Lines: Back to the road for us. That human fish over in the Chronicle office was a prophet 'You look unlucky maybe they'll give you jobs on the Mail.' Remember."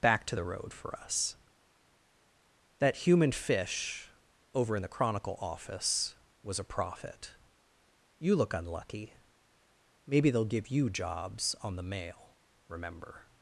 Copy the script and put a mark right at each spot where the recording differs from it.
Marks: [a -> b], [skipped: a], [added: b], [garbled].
Back to the road for us. That human fish over in the Chronicle office was a prophet 'You look unlucky maybe they'll give you jobs on the Mail.' Remember."